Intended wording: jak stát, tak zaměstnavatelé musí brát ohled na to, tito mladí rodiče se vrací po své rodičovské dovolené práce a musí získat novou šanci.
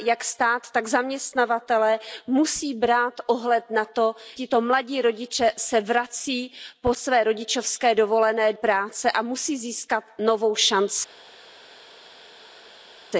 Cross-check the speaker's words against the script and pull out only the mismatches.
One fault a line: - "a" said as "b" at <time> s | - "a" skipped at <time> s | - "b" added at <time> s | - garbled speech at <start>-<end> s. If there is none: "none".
none